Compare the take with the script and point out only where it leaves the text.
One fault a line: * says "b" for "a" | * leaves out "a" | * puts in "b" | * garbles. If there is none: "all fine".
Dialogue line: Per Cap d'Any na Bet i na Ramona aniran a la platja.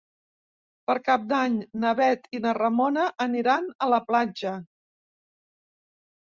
all fine